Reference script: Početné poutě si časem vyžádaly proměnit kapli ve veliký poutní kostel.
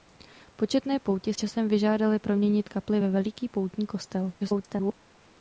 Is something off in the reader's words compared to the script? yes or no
yes